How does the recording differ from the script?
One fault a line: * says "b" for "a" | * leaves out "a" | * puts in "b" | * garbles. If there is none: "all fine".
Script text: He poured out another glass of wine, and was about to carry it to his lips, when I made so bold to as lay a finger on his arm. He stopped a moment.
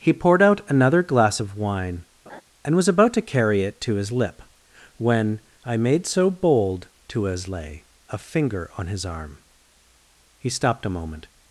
* says "lip" for "lips"